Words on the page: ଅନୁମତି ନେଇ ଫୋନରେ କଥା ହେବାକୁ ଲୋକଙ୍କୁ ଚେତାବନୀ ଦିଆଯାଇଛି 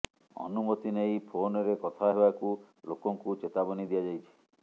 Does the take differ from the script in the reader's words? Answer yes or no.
no